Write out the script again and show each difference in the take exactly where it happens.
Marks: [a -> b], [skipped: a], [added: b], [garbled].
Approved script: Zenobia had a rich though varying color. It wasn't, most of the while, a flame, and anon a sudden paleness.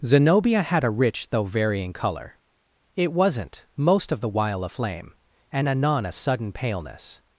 Zenobia had a rich though varying color. It wasn't, most of the while, a flame, and anon a sudden paleness.